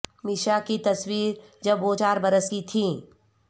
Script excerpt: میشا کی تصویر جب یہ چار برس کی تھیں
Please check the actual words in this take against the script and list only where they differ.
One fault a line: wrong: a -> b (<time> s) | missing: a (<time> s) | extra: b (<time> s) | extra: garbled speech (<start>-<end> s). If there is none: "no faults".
wrong: یہ -> وہ (1.8 s)